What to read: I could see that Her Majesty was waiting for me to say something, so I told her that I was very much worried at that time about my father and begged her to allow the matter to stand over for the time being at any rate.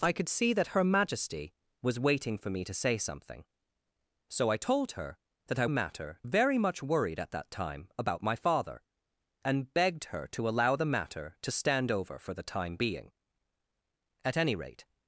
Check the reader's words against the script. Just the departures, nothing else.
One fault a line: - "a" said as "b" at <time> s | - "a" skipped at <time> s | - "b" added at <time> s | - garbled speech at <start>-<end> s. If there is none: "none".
- "was" said as "matter" at 5.7 s